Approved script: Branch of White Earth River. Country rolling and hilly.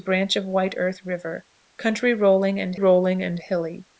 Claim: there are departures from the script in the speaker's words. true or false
true